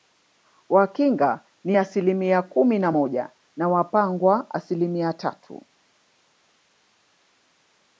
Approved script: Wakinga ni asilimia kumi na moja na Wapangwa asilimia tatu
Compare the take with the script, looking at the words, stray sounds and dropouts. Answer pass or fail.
pass